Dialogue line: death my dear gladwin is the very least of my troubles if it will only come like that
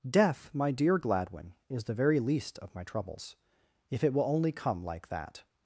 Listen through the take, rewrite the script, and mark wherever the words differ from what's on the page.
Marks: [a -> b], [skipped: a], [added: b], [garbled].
death my dear gladwin is the very least of my troubles if it will only come like that